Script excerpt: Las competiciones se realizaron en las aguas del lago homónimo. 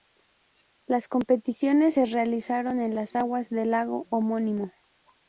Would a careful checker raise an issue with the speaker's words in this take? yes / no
no